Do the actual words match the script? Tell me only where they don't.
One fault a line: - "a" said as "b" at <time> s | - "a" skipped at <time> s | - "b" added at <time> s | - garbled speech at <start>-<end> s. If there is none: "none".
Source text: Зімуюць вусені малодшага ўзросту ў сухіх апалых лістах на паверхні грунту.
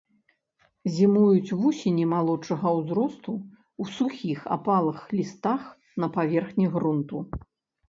none